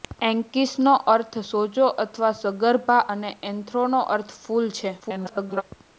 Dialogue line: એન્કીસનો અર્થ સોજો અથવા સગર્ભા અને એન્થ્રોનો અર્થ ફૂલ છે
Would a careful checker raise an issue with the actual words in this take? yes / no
yes